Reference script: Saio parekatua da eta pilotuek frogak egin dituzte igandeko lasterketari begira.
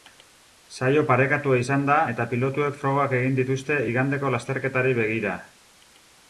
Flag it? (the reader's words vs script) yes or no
yes